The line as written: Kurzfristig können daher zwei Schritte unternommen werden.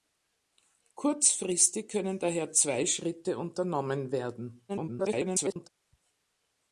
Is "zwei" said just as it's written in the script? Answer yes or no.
yes